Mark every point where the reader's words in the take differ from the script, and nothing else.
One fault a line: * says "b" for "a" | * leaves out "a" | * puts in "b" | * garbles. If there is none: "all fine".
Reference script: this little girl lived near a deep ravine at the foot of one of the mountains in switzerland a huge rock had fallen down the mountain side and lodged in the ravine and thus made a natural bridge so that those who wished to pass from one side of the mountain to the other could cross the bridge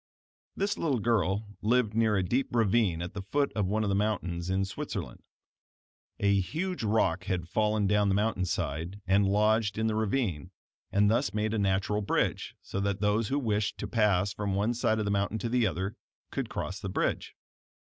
all fine